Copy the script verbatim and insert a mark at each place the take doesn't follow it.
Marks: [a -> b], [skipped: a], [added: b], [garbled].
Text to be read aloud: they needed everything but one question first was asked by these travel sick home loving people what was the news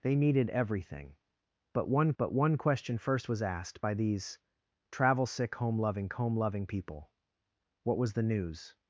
they needed everything but one [added: but one] question first was asked by these travel sick home loving [added: home loving] people what was the news